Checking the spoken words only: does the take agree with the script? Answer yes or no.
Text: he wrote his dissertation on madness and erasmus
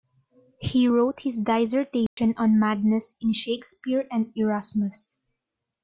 no